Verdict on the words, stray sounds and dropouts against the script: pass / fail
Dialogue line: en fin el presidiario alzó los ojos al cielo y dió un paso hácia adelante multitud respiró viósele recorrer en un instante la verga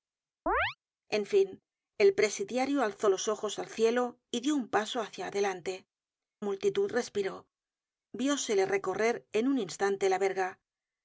fail